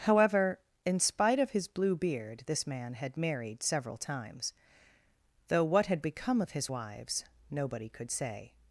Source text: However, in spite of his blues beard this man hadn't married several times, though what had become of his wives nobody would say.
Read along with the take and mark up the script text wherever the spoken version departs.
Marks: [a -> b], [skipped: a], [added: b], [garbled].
However, in spite of his [blues -> blue] beard this man [hadn't -> had] married several times, though what had become of his wives nobody [would -> could] say.